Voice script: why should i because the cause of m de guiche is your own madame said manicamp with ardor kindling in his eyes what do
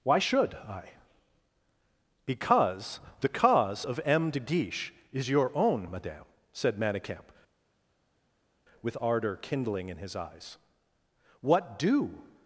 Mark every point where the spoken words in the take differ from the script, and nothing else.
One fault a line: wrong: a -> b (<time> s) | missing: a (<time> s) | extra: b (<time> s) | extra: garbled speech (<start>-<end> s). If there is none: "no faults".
no faults